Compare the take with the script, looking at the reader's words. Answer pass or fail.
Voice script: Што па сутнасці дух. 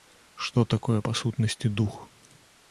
fail